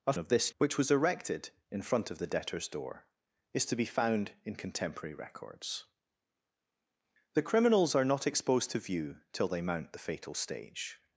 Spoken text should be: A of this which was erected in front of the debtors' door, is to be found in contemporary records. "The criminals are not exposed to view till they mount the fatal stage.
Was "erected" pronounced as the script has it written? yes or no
yes